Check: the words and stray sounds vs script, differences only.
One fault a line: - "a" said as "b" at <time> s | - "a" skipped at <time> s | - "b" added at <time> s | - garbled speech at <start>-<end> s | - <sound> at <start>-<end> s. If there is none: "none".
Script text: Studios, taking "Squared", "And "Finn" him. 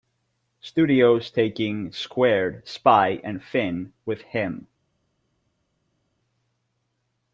- "Spy" added at 2.7 s
- "with" added at 4.0 s